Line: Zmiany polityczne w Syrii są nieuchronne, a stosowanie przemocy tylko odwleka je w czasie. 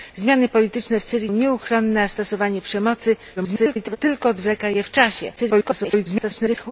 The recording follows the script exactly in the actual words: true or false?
false